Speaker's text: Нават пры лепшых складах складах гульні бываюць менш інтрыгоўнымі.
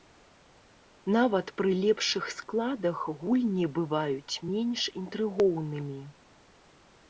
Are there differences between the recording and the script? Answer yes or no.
yes